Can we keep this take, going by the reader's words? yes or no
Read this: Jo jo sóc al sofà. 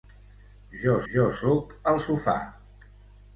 yes